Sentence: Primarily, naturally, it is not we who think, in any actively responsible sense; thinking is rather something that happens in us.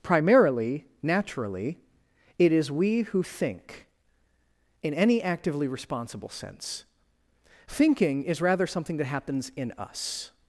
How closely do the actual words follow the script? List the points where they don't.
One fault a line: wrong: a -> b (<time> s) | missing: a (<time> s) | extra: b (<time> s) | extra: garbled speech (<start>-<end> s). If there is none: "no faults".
missing: not (2.7 s)